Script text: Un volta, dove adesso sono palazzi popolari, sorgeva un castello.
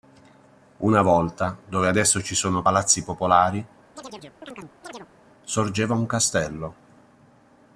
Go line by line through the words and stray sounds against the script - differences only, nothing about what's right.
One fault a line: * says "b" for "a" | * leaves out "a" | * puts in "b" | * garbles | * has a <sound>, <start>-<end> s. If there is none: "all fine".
* says "Una" for "Un"
* puts in "ci"
* has a chirp, 4.0-5.1 s